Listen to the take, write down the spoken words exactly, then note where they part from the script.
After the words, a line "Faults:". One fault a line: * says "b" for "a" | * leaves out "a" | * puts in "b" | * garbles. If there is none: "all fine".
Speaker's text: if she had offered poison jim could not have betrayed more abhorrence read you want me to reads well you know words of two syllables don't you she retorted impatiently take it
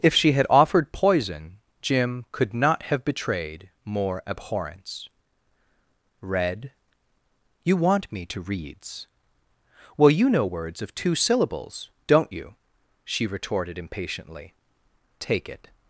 if she had offered poison jim could not have betrayed more abhorrence read you want me to reads well you know words of two syllables don't you she retorted impatiently take it
Faults:
all fine